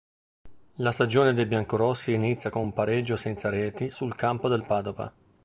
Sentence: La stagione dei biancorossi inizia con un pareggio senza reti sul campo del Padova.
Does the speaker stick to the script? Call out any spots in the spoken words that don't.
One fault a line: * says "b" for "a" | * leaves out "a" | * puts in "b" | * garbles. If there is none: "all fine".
all fine